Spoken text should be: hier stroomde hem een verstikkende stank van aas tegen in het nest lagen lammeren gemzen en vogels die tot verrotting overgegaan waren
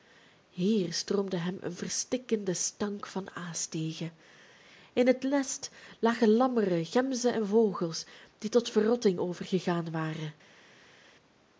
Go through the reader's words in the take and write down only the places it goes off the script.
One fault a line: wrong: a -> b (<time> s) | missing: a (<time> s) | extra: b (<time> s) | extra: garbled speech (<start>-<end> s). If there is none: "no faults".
no faults